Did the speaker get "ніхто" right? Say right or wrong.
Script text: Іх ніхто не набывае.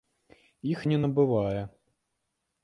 wrong